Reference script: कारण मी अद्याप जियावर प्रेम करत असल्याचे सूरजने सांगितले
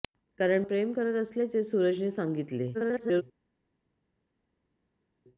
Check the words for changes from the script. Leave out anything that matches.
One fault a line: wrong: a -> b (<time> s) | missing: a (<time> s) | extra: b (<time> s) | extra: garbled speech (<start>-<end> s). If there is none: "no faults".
missing: मी अद्याप जियावर (0.6 s)
extra: garbled speech (2.7-3.2 s)